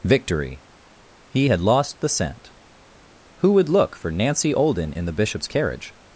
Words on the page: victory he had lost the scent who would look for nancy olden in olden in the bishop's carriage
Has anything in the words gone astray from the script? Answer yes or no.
yes